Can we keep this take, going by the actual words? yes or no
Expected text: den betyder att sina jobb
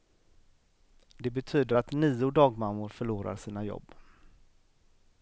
no